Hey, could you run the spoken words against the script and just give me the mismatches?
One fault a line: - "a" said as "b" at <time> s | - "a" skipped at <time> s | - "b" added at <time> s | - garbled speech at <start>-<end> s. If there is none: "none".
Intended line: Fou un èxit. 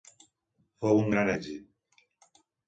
- "gran" added at 1.2 s